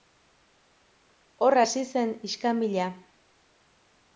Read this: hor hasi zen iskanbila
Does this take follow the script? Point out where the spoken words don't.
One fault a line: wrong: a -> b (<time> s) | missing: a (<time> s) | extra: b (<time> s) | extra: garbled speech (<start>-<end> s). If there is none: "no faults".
no faults